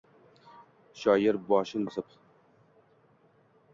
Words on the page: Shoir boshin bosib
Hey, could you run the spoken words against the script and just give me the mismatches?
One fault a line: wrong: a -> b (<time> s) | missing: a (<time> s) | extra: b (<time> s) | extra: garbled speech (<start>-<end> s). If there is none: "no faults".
no faults